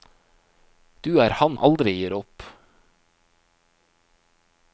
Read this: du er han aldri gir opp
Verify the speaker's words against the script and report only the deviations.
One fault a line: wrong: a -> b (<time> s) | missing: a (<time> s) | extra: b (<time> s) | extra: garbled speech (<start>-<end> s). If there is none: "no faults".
no faults